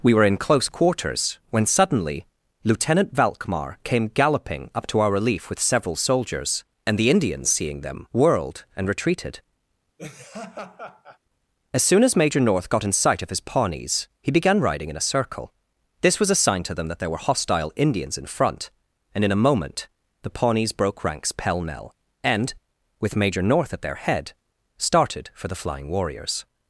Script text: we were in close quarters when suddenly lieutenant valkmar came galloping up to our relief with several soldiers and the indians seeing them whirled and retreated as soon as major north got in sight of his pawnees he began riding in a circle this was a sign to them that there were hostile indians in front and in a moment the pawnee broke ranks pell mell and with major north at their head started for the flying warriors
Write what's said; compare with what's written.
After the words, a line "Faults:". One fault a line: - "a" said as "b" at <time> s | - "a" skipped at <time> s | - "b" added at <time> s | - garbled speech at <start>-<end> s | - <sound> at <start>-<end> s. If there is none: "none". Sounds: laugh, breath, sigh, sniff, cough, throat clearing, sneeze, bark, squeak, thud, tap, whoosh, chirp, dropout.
we were in close quarters when suddenly lieutenant valkmar came galloping up to our relief with several soldiers and the indians seeing them whirled and retreated as soon as major north got in sight of his pawnees he began riding in a circle this was a sign to them that there were hostile indians in front and in a moment the pawnees broke ranks pell mell and with major north at their head started for the flying warriors
Faults:
- laugh at 10.0-11.2 s
- "pawnee" said as "pawnees" at 20.3 s